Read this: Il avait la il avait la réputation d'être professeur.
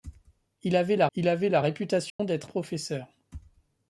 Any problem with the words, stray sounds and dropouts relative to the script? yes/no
yes